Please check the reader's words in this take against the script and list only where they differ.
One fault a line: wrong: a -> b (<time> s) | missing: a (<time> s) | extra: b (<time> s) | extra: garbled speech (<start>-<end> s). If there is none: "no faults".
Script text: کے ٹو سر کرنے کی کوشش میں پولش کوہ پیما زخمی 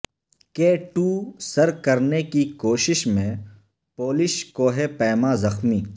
no faults